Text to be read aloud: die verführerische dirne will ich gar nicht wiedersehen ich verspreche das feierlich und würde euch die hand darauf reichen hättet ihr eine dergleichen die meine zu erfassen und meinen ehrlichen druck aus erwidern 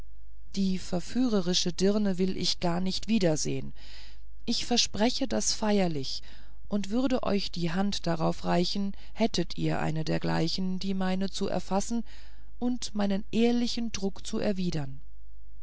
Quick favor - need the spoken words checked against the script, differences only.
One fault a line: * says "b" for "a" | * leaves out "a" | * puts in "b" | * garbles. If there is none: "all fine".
* says "zu" for "aus"